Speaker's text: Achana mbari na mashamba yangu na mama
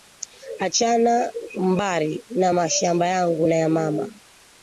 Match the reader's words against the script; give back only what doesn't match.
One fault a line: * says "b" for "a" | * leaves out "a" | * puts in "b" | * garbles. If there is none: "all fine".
* puts in "ya"